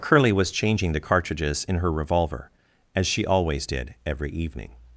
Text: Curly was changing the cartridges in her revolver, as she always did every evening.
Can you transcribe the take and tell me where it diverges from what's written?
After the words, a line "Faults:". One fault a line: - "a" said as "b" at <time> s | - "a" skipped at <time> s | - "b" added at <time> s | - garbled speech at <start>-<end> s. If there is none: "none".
Curly was changing the cartridges in her revolver, as she always did every evening.
Faults:
none